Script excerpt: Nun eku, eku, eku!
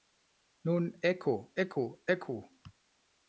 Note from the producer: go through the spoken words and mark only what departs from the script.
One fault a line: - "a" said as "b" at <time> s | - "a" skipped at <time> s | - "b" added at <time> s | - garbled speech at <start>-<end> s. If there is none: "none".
none